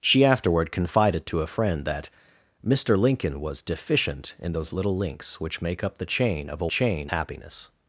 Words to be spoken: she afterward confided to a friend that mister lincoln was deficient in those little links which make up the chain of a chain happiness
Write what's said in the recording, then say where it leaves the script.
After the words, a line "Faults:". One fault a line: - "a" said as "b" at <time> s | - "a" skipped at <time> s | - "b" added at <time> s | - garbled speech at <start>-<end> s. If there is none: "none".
she afterward confided to a friend that mister lincoln was deficient in those little links which make up the chain of a chain happiness
Faults:
none